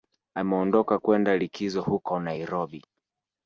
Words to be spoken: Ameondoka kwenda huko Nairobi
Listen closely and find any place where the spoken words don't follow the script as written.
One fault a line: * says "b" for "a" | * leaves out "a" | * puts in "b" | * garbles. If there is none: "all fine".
* puts in "likizo"